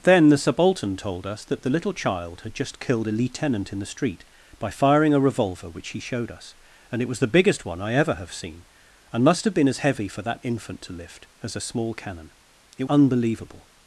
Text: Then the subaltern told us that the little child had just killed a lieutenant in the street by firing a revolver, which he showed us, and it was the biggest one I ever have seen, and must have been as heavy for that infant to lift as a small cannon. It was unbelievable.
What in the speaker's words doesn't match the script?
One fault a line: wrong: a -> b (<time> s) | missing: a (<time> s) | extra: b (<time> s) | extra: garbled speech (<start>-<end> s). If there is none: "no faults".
missing: was (12.8 s)